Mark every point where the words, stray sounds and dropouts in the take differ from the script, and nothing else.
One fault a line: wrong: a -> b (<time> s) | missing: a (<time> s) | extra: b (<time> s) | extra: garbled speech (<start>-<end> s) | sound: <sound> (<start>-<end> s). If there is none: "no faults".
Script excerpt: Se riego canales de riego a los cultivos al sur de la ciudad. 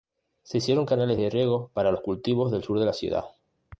wrong: riego -> hicieron (0.6 s)
wrong: a -> para (1.7 s)
wrong: al -> del (2.5 s)